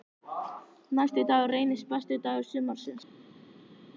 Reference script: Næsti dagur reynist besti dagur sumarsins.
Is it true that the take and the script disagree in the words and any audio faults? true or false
false